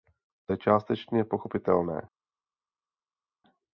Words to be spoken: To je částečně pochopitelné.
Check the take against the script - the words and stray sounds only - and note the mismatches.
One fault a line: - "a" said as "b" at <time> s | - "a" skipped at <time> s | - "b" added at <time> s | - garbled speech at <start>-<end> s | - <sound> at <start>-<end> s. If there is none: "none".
none